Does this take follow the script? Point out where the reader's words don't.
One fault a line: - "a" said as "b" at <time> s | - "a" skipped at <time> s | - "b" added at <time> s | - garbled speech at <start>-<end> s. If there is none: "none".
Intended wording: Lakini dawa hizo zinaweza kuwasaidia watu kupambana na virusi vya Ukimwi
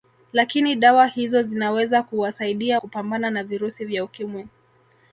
- "watu" skipped at 2.8 s